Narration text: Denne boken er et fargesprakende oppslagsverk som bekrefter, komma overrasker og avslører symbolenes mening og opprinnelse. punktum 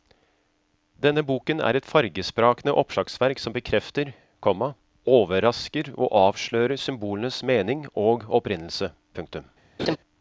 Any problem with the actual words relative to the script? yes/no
no